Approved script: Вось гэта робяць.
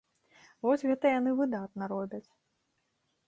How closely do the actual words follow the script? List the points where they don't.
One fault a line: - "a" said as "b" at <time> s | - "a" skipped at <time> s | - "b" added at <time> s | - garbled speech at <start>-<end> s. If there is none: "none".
- "яны выдатна" added at 1.2 s